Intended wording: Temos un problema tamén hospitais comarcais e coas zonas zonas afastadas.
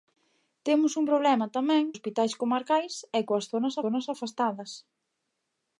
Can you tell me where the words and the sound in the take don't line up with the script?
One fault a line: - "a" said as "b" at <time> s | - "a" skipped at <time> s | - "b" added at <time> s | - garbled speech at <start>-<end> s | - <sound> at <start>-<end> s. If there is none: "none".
none